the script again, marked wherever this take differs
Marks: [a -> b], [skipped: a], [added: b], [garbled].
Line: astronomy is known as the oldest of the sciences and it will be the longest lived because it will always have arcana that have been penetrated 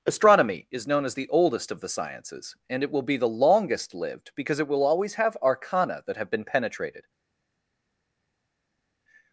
astronomy is known as the oldest of the sciences and it will be the longest lived because it will always have arcana that have been penetrated